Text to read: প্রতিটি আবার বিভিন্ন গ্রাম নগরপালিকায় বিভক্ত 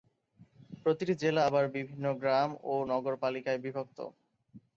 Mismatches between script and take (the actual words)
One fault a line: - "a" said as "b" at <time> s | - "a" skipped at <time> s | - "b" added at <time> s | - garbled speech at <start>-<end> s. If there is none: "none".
- "জেলা" added at 1.2 s
- "ও" added at 2.6 s